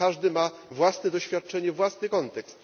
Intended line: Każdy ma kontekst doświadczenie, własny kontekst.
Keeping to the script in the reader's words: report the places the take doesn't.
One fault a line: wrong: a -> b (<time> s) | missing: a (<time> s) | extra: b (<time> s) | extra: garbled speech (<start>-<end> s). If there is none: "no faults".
wrong: kontekst -> własne (0.7 s)